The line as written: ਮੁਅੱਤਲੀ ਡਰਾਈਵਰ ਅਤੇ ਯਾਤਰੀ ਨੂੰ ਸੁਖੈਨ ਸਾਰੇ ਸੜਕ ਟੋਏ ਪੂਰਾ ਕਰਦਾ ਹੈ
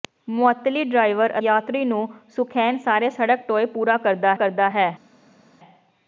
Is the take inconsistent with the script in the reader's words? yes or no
yes